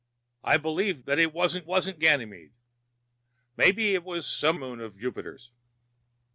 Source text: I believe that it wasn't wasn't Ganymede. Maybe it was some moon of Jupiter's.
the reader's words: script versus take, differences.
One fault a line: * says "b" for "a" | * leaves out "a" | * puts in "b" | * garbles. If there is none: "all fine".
all fine